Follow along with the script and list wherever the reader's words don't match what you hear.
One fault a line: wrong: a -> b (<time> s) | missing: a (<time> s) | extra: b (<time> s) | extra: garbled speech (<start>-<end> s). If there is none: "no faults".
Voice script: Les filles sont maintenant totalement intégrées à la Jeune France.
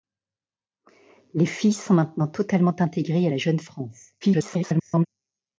extra: garbled speech (4.2-5.1 s)